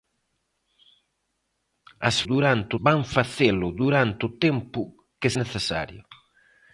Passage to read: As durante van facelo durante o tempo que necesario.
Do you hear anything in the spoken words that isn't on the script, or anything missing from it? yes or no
no